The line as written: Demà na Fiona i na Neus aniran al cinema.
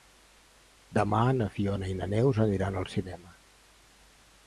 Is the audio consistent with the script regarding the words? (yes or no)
yes